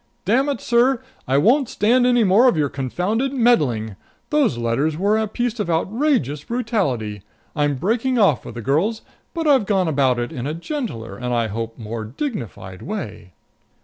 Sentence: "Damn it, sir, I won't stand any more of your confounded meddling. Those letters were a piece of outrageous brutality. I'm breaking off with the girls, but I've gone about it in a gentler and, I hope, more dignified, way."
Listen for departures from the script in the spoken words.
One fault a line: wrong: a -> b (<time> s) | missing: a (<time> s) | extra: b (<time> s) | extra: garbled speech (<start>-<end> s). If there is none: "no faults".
no faults